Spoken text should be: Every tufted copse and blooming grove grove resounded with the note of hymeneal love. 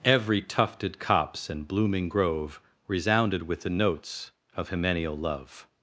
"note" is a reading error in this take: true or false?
true